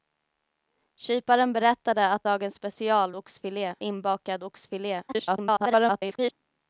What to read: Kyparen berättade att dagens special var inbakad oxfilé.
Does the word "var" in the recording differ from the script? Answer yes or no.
yes